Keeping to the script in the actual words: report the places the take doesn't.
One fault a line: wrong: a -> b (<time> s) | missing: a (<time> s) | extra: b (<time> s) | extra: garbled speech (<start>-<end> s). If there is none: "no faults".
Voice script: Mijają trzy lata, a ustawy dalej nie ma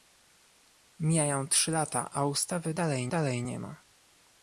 extra: dalej (3.1 s)